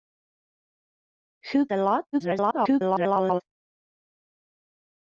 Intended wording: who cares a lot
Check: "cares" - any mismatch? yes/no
yes